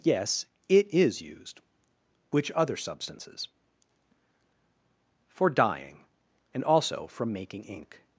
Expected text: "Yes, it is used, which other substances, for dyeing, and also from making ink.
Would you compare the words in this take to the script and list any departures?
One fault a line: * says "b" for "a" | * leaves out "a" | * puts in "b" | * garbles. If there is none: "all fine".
all fine